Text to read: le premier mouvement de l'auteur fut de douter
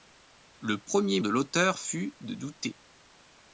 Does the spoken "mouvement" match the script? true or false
false